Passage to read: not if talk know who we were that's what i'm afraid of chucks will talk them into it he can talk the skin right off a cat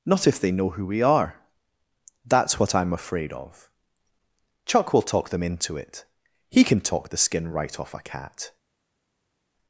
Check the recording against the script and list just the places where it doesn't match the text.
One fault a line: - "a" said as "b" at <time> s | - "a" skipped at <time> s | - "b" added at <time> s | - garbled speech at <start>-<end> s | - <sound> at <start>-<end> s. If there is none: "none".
- "talk" said as "they" at 0.4 s
- "were" said as "are" at 1.0 s
- "chucks" said as "chuck" at 4.7 s